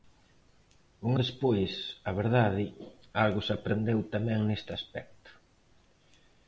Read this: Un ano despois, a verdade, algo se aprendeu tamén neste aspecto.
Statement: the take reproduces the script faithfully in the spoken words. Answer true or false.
false